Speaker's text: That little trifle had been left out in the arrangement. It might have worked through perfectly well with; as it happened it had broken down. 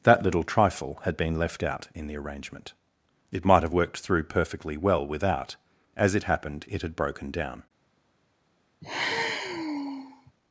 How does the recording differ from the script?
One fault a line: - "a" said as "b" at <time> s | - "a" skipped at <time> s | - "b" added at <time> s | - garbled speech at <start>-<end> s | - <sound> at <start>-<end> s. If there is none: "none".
- "with" said as "without" at 5.0 s
- sigh at 8.8-10.3 s